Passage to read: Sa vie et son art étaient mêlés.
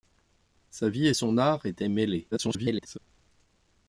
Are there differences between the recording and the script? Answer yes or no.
yes